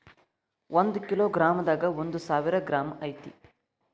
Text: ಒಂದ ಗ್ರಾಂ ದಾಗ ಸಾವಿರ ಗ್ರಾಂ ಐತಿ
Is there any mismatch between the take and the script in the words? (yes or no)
yes